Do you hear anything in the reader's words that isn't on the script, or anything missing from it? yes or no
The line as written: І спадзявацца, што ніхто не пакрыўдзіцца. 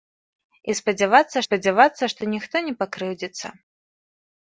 yes